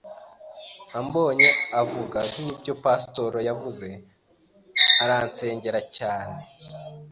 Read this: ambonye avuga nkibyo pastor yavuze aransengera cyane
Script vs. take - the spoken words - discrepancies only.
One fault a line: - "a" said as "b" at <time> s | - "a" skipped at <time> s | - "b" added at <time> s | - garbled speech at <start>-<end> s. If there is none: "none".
none